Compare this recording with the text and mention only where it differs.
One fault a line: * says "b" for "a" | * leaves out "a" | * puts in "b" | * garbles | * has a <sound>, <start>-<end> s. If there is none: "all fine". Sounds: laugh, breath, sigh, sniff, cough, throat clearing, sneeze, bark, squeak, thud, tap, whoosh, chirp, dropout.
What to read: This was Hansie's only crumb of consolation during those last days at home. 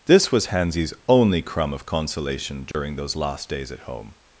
* has a dropout, 2.7-2.7 s